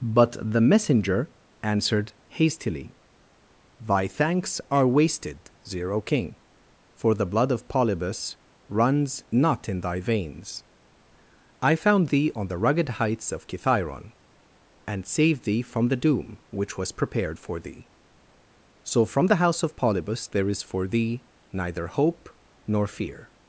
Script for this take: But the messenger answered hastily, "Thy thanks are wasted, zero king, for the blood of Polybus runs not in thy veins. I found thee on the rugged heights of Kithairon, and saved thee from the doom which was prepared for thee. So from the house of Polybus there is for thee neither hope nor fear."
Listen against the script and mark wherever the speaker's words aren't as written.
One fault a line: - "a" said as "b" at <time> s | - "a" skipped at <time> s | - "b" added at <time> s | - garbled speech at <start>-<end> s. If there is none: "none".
none